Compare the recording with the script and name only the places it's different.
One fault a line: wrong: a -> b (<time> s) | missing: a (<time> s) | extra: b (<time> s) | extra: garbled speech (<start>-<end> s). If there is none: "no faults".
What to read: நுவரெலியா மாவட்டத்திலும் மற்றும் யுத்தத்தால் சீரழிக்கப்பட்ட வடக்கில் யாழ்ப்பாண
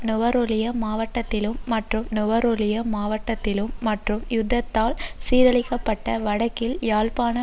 extra: நுவரெலியா மாவட்டத்திலும் மற்றும் (2.1 s)